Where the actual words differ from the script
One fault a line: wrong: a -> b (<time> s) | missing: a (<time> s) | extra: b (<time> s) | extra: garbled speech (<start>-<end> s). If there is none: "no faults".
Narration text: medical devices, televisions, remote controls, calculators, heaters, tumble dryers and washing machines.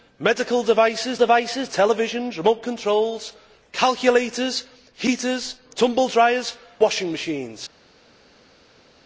extra: devices (1.2 s)
missing: and (6.6 s)